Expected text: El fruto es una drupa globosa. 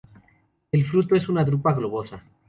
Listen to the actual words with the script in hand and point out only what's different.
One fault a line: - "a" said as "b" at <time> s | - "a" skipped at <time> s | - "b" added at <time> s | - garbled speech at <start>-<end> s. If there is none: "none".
none